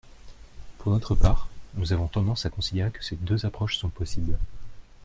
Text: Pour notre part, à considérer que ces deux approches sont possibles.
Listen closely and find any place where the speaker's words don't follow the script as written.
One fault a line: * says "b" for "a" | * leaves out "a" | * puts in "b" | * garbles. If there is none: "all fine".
* puts in "nous avons tendance"